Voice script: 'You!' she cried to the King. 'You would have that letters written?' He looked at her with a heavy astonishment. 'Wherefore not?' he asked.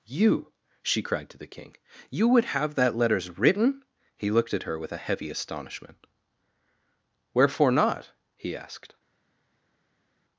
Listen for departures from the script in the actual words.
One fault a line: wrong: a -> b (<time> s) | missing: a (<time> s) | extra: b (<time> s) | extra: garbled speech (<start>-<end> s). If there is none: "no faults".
no faults